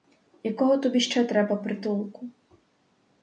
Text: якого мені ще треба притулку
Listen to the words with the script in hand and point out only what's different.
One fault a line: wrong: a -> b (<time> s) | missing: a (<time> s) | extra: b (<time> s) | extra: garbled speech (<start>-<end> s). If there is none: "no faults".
wrong: мені -> тобі (0.8 s)